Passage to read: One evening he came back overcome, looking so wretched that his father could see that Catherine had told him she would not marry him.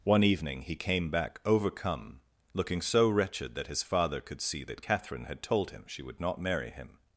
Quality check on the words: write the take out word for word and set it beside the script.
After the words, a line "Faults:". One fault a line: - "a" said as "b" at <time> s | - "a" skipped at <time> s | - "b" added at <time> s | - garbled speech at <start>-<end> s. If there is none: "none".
One evening he came back overcome, looking so wretched that his father could see that Catherine had told him she would not marry him.
Faults:
none